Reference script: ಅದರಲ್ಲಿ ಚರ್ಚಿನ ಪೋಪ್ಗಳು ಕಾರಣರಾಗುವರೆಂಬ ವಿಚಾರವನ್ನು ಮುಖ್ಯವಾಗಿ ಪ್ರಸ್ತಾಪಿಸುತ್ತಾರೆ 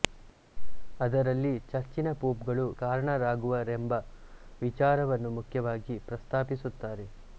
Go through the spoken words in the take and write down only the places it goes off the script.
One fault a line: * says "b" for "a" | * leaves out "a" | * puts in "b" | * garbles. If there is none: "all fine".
all fine